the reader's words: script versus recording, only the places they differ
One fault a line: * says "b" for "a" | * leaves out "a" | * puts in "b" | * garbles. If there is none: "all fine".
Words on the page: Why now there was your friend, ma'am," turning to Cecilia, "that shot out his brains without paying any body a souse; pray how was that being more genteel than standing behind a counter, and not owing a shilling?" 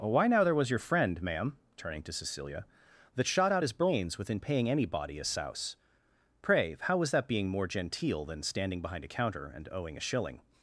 * says "within" for "without"
* leaves out "not"